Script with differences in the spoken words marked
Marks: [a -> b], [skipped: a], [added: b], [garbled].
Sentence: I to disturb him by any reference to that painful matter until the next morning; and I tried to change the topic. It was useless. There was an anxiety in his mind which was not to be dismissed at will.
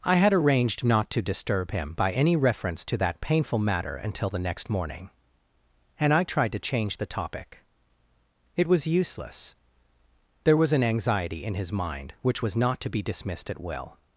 I [added: had arranged not] to disturb him by any reference to that painful matter until the next morning; and I tried to change the topic. It was useless. There was an anxiety in his mind which was not to be dismissed at will.